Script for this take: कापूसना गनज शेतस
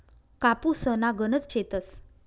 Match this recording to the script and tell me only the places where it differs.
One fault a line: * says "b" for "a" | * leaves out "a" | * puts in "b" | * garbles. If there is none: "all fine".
all fine